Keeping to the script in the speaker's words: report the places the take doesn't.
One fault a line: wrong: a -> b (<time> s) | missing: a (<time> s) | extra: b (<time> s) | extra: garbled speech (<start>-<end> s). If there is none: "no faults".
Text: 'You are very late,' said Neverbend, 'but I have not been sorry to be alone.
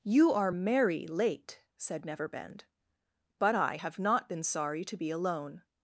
wrong: very -> merry (0.5 s)